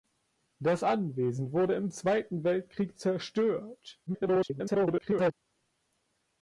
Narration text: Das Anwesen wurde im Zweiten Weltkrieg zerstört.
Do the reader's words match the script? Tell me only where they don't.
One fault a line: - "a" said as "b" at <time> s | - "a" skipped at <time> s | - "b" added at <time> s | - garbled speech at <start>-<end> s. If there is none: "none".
- garbled speech at 4.1-5.3 s